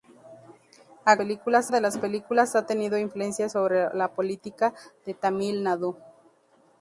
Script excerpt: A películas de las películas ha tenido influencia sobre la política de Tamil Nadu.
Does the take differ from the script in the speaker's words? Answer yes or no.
no